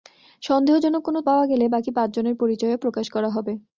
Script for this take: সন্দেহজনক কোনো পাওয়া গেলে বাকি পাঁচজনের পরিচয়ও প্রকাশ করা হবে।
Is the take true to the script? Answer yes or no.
yes